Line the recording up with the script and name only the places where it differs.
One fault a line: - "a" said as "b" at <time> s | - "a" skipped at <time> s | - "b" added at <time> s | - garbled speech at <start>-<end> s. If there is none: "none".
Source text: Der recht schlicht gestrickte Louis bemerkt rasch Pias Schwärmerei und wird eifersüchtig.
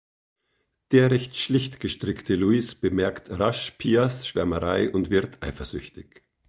none